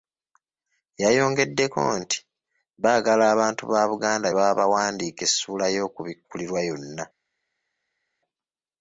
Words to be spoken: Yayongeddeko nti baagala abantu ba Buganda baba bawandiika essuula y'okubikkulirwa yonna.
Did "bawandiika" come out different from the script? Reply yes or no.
no